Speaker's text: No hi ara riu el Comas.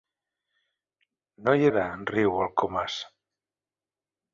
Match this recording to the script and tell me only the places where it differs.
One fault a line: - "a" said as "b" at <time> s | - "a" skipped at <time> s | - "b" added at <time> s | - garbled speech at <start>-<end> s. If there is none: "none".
none